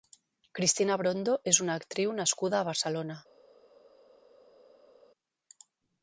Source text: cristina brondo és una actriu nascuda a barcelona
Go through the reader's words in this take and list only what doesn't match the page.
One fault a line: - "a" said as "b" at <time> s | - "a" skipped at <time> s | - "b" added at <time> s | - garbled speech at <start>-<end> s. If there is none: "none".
none